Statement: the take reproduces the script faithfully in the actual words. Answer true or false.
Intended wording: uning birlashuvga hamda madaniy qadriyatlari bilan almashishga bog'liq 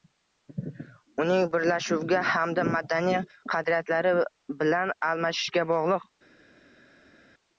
true